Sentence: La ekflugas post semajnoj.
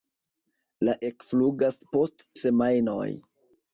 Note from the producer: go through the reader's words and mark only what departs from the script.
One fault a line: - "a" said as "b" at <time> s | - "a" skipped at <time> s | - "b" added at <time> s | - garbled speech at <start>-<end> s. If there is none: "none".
none